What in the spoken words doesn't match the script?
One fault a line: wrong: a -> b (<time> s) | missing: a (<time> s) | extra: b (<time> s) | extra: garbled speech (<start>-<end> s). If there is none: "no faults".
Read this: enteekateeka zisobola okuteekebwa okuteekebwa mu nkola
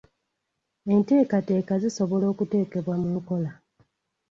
missing: okuteekebwa (3.0 s)